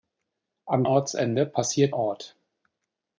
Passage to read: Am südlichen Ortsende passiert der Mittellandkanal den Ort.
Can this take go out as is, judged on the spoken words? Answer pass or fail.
fail